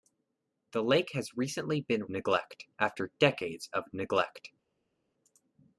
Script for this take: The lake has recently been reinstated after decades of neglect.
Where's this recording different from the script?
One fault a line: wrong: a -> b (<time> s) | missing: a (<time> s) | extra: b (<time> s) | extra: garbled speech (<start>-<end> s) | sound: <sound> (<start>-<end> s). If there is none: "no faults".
wrong: reinstated -> neglect (2.1 s)